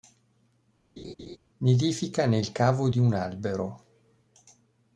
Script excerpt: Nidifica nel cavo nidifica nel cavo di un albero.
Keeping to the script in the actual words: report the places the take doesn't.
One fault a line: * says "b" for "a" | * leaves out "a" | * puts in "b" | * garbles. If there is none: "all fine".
* leaves out "nidifica nel cavo"